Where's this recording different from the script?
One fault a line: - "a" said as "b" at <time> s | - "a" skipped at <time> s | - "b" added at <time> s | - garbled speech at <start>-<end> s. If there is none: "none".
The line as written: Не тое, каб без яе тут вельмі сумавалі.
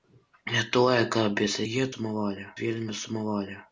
- "тут" said as "сумавалі" at 1.9 s